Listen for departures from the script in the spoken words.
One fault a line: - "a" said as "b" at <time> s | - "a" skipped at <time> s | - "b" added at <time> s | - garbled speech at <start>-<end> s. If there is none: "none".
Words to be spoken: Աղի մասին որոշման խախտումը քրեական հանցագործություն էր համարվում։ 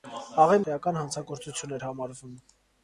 - "մասին որոշման խախտումը" skipped at 0.6 s